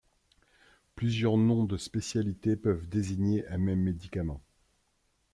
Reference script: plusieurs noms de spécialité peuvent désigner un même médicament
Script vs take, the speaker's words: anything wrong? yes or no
no